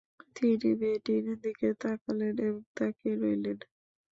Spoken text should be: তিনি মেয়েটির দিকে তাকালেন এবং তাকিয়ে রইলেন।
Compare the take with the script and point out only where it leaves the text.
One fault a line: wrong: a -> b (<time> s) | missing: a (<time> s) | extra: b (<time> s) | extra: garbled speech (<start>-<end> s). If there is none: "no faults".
no faults